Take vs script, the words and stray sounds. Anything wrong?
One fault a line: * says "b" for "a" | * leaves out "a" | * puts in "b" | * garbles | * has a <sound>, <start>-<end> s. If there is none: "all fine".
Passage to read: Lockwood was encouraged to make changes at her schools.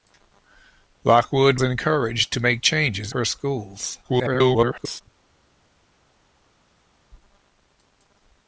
* leaves out "was"
* leaves out "at"
* garbles